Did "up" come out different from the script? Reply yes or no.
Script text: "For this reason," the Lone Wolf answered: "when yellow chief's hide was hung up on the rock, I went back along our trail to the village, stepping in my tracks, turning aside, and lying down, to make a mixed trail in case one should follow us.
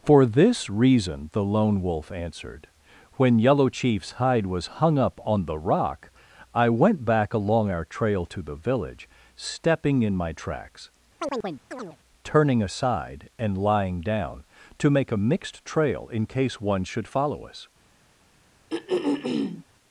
no